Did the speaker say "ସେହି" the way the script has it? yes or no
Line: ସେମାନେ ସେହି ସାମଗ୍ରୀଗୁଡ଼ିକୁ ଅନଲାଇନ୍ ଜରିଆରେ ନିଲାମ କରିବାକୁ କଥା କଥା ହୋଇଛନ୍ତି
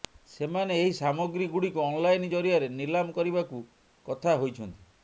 no